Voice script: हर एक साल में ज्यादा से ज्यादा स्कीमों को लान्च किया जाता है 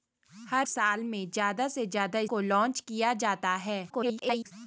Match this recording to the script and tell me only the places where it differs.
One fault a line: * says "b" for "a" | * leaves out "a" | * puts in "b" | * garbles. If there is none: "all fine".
* leaves out "एक"
* leaves out "स्कीमों"
* garbles